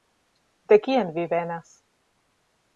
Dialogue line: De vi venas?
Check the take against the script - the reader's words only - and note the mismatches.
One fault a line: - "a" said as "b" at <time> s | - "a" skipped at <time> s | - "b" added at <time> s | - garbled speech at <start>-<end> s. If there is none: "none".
- "kien" added at 0.8 s